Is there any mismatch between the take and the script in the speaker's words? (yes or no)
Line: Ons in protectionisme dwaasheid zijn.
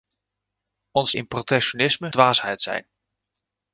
no